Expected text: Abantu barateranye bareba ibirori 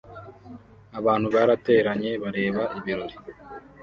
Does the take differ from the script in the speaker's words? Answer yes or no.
no